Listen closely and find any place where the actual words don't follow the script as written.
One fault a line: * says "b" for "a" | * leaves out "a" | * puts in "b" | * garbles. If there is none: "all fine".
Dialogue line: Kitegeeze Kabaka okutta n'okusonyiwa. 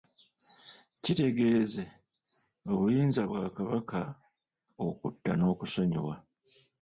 * puts in "obuyinza bwa"